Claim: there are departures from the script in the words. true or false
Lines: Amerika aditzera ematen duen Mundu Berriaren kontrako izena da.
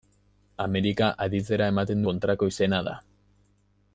true